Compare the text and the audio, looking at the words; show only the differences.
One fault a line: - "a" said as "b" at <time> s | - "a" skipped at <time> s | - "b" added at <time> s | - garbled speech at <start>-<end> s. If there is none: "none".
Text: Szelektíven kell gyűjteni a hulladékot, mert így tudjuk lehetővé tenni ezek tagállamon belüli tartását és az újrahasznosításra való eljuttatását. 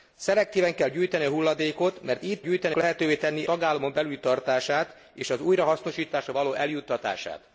- "tudjuk" said as "gyűjteni" at 2.4 s
- "ezek" skipped at 3.5 s